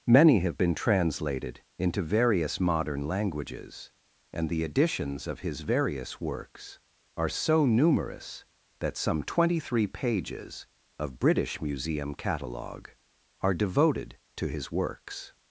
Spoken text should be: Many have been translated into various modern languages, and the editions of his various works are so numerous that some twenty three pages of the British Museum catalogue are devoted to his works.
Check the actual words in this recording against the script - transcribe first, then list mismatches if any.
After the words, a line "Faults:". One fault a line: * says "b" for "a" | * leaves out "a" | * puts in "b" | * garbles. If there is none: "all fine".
Many have been translated into various modern languages, and the editions of his various works are so numerous that some twenty three pages of British Museum catalogue are devoted to his works.
Faults:
* leaves out "the"